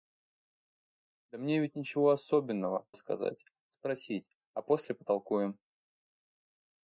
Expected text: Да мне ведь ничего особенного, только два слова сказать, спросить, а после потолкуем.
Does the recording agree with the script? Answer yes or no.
no